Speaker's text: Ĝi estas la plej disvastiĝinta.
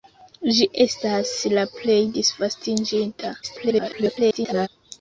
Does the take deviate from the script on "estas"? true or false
false